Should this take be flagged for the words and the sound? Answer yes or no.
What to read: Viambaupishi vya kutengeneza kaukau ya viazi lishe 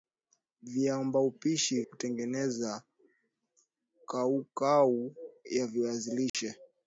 yes